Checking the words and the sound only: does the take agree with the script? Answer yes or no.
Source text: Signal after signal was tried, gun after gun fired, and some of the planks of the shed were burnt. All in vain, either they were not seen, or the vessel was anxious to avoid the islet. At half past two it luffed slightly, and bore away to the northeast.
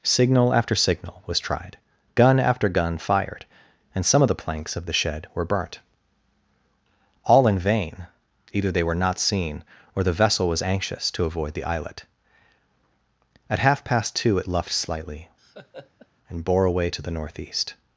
no